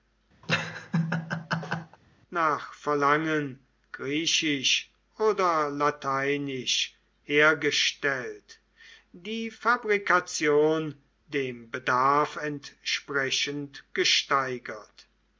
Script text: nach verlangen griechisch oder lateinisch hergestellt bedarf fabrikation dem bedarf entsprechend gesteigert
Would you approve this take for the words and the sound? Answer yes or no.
no